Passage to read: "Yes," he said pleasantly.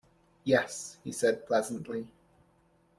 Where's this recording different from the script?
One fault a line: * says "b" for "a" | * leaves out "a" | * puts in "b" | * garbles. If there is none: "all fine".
all fine